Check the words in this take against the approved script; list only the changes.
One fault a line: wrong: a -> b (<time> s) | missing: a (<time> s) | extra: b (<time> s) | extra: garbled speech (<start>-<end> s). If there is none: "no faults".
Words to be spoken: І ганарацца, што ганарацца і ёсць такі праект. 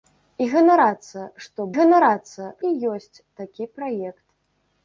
no faults